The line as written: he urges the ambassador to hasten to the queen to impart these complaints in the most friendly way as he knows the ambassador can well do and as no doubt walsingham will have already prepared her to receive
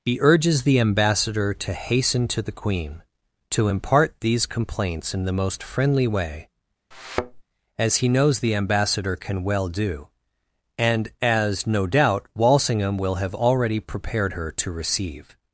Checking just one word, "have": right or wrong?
right